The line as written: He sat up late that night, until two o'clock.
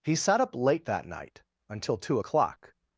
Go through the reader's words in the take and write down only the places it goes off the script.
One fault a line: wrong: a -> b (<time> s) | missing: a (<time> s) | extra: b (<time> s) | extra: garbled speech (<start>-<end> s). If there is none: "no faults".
no faults